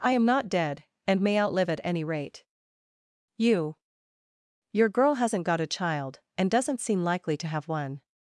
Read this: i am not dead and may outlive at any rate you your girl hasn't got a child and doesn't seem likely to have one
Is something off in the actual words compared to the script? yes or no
no